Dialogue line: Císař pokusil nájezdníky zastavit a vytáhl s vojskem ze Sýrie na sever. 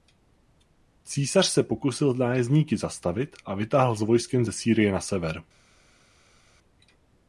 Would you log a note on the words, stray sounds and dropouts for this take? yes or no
yes